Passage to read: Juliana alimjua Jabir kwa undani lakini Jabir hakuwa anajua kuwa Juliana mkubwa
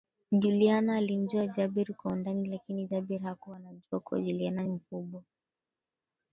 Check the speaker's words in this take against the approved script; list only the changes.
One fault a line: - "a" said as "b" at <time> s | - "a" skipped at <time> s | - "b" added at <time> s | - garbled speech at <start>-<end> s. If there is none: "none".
none